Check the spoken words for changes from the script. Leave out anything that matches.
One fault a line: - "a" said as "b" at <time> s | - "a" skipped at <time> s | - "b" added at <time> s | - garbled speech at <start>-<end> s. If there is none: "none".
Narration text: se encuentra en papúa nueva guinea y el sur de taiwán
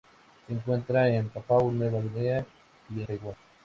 - "el sur de" skipped at 3.0 s